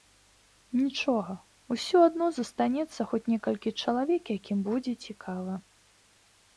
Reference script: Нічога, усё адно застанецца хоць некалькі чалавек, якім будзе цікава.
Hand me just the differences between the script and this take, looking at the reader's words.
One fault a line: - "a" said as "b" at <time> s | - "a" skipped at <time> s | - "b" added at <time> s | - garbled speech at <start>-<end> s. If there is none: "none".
none